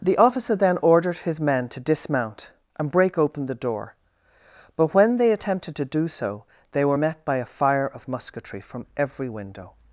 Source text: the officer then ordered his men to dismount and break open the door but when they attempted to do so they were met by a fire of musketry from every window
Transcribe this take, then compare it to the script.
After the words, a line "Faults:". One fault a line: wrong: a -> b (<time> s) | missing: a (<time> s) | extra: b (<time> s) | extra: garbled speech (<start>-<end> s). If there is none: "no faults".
the officer then ordered his men to dismount and break open the door but when they attempted to do so they were met by a fire of musketry from every window
Faults:
no faults